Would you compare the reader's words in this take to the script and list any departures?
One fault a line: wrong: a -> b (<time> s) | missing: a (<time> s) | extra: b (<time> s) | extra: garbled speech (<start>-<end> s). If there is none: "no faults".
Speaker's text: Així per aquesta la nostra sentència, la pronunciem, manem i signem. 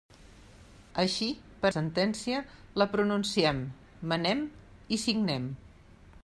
missing: aquesta la nostra (1.7 s)